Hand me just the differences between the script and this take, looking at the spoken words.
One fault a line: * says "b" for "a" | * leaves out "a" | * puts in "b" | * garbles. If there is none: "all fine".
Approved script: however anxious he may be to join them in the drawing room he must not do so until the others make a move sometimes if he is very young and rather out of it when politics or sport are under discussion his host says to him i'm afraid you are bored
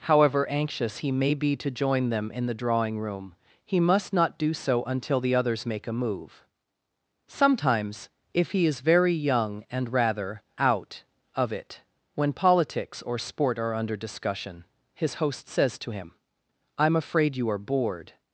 all fine